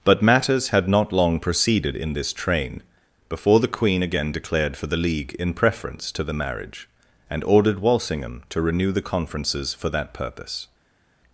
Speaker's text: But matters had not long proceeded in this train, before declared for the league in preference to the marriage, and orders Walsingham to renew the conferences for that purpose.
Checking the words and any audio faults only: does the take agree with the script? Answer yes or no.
no